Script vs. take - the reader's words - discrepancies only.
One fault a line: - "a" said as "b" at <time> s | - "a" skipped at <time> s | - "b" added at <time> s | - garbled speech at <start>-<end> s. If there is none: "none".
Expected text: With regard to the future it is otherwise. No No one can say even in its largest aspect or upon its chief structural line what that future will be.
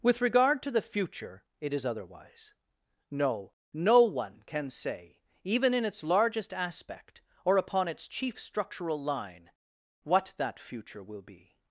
none